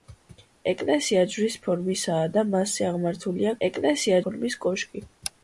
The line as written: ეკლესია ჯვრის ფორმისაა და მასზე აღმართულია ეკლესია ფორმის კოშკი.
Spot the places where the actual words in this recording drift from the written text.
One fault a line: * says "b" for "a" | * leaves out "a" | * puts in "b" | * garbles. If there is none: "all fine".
all fine